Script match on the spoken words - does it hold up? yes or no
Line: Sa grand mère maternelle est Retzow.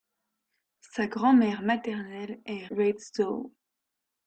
yes